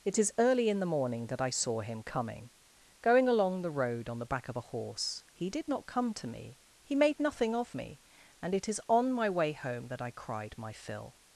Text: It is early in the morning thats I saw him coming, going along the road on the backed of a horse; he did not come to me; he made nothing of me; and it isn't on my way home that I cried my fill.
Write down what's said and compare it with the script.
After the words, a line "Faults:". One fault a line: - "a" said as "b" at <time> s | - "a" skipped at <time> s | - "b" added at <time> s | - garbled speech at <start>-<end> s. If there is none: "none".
It is early in the morning that I saw him coming, going along the road on the back of a horse; he did not come to me; he made nothing of me; and it is on my way home that I cried my fill.
Faults:
- "thats" said as "that" at 1.3 s
- "backed" said as "back" at 4.3 s
- "isn't" said as "is" at 8.7 s